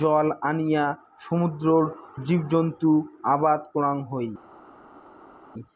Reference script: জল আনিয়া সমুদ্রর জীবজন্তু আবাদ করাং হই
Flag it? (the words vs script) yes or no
no